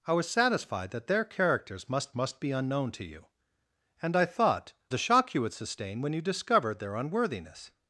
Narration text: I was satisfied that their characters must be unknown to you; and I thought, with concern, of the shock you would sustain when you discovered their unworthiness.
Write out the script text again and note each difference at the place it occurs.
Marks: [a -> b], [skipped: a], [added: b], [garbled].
I was satisfied that their characters must [added: must] be unknown to you; and I thought, [skipped: with concern, of] the shock you would sustain when you discovered their unworthiness.